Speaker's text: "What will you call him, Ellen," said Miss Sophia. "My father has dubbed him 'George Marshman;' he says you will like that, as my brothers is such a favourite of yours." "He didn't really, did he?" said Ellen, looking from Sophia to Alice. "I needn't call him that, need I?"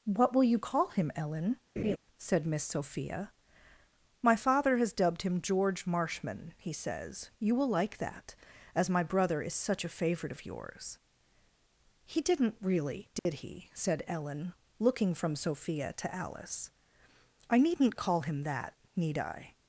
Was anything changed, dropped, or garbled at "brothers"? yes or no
yes